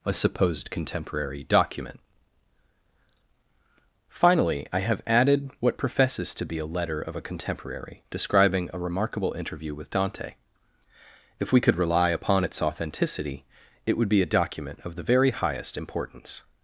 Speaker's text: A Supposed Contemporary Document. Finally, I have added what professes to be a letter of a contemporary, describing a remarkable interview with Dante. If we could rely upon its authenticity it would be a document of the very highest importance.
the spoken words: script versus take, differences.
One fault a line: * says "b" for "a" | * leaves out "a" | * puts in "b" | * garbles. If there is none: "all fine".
all fine